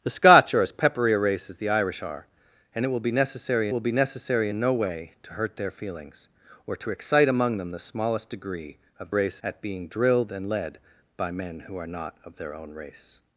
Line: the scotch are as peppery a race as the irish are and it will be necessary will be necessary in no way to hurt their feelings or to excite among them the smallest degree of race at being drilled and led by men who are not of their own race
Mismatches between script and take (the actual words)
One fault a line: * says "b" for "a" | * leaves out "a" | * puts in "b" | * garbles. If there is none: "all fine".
all fine